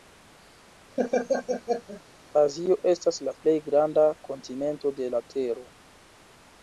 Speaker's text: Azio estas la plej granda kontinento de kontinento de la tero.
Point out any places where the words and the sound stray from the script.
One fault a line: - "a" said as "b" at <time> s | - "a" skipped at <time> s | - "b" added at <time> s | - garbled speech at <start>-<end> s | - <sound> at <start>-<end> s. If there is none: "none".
- laugh at 1.0-2.0 s
- "kontinento de" skipped at 5.1 s